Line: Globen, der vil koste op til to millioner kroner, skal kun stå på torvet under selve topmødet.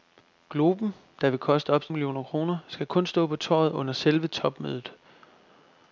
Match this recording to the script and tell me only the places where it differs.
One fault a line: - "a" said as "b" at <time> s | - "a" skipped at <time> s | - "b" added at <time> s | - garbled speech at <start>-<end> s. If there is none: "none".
- "to" skipped at 1.9 s